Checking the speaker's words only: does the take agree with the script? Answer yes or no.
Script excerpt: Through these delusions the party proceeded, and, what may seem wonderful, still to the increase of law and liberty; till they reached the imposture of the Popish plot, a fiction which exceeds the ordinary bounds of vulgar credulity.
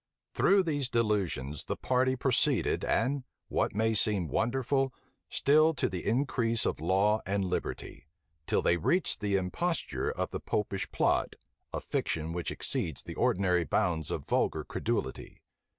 yes